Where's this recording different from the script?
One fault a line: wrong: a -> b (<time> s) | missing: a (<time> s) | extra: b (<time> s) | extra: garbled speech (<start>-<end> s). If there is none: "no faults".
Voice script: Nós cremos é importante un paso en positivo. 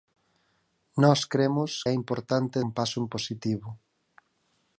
no faults